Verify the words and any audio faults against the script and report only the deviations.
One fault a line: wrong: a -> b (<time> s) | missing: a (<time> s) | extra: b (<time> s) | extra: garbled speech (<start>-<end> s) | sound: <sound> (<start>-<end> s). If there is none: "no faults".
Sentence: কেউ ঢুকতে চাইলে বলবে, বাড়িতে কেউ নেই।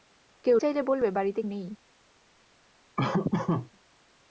missing: ঢুকতে (0.6 s)
missing: কেউ (1.4 s)
sound: laugh (3.0-3.7 s)